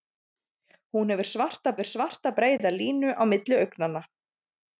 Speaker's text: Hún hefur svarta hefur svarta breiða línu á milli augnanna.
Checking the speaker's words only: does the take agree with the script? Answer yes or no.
yes